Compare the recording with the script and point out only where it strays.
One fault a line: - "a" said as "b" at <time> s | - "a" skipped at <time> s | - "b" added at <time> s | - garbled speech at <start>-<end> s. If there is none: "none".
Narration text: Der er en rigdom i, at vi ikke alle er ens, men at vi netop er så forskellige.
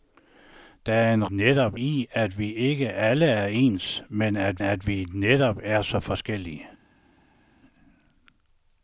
- "rigdom" said as "netop" at 1.3 s
- "at" added at 4.6 s